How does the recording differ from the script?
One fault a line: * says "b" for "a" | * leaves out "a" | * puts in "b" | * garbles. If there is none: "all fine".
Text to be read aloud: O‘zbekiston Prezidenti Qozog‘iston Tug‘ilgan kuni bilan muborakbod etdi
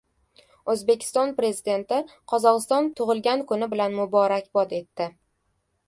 all fine